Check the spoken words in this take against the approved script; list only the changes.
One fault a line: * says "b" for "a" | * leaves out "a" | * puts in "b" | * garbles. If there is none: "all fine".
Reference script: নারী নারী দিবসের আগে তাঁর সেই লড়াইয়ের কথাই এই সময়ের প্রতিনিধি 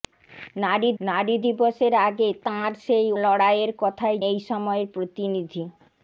all fine